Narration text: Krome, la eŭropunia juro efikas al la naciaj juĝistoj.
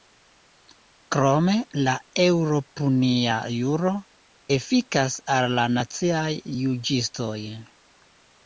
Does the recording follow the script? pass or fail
pass